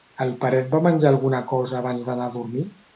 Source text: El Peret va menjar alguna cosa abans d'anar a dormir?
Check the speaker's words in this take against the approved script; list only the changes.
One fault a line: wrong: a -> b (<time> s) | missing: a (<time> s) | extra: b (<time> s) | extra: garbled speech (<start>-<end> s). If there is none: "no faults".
no faults